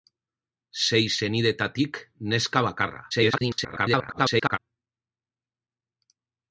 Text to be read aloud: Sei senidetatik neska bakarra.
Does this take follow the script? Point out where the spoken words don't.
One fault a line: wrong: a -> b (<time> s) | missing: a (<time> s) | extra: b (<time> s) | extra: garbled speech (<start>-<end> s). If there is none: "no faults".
extra: garbled speech (3.1-4.6 s)